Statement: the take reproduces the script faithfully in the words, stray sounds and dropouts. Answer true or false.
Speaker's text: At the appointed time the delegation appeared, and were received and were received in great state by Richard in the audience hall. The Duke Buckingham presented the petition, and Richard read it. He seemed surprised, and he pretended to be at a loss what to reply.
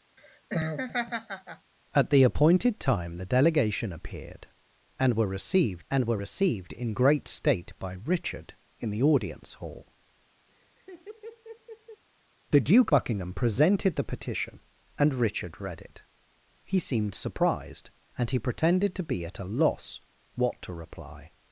false